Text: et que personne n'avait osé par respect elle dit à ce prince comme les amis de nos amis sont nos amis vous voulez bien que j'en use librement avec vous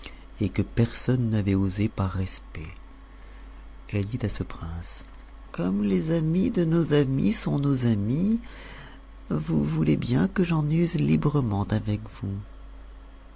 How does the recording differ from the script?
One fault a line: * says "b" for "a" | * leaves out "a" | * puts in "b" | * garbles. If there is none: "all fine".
all fine